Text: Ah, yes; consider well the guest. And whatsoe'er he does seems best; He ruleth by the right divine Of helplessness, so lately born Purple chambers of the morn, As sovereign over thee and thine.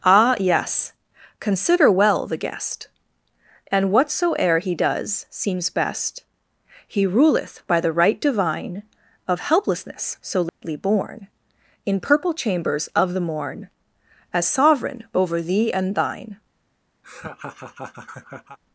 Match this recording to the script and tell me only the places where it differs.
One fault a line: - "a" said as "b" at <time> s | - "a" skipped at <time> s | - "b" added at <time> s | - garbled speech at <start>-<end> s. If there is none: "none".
- "In" added at 11.9 s